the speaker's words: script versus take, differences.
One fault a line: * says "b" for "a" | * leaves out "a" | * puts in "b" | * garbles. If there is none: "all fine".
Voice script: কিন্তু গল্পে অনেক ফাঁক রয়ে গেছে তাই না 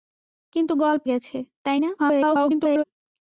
* leaves out "অনেক ফাঁক রয়ে"
* garbles